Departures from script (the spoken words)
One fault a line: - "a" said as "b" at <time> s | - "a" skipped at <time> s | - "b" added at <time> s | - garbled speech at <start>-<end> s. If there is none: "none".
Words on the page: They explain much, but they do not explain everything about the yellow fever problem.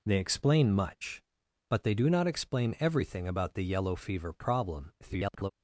- garbled speech at 5.0-5.5 s